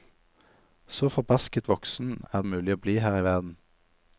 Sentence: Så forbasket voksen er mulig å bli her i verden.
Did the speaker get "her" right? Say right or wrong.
right